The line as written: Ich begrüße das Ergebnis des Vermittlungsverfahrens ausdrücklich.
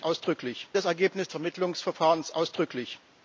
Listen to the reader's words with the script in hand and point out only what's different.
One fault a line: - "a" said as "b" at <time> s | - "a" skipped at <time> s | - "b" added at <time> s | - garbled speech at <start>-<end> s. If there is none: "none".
- "begrüße" said as "ausdrücklich" at -0.0 s
- "des" skipped at 1.3 s